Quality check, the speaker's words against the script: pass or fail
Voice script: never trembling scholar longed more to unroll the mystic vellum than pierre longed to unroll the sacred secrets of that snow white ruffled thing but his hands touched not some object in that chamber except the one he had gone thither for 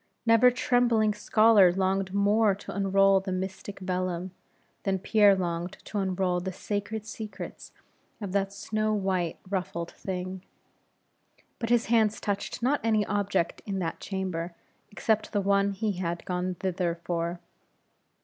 fail